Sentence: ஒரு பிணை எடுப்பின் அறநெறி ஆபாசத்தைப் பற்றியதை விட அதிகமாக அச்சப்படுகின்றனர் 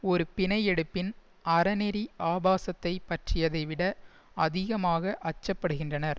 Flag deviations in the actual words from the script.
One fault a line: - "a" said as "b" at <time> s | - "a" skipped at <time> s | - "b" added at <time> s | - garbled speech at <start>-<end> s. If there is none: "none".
none